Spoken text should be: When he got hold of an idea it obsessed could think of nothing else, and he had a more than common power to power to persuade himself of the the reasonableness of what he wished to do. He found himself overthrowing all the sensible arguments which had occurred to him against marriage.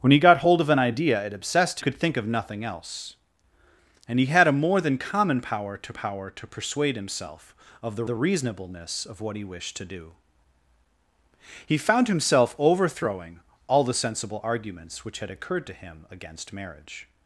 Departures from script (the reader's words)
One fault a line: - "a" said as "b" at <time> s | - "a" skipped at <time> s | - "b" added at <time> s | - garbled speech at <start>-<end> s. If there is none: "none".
none